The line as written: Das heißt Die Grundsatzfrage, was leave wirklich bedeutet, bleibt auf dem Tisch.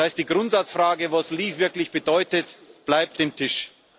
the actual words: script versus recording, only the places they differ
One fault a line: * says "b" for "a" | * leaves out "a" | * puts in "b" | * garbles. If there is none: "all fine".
* leaves out "auf"